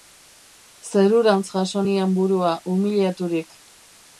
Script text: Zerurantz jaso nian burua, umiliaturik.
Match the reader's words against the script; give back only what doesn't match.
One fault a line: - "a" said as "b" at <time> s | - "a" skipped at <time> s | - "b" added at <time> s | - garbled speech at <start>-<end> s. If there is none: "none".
none